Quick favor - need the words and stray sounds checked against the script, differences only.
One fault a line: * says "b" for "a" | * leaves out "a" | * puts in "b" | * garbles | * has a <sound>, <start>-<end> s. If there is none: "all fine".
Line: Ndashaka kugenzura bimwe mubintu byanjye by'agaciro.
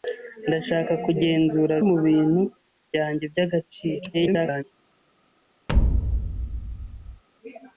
* leaves out "bimwe"
* garbles
* has a thud, 5.7-7.2 s